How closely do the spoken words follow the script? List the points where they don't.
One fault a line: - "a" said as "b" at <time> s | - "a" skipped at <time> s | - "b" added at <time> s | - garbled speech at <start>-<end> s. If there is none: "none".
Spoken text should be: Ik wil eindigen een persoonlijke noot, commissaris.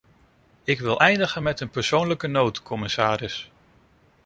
- "met" added at 1.4 s